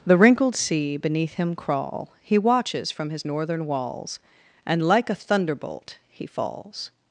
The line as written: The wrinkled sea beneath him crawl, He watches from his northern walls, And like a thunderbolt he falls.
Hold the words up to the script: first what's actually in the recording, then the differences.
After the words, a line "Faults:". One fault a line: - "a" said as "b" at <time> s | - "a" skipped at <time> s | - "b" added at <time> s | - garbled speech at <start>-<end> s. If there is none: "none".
The wrinkled sea beneath him crawl, He watches from his northern walls, And like a thunderbolt he falls.
Faults:
none